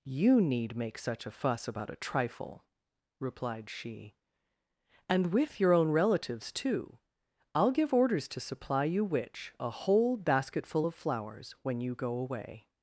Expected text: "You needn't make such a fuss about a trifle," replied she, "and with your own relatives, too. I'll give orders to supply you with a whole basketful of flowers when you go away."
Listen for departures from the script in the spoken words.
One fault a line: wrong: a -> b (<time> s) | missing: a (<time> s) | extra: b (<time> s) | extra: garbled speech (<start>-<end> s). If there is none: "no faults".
wrong: needn't -> need (0.4 s)
wrong: with -> which (9.1 s)